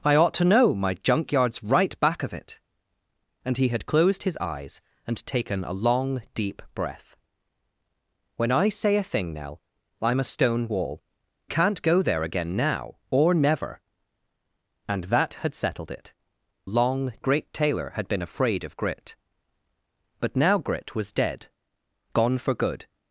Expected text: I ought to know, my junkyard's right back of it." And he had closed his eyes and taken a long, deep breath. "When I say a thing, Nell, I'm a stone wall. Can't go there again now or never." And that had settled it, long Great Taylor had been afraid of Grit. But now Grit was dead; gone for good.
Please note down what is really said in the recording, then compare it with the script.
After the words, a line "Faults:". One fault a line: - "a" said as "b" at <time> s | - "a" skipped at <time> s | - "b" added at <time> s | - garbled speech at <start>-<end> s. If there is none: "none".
I ought to know, my junkyard's right back of it." And he had closed his eyes and taken a long, deep breath. "When I say a thing, Nell, I'm a stone wall. Can't go there again now or never." And that had settled it, long Great Taylor had been afraid of Grit. But now Grit was dead; gone for good.
Faults:
none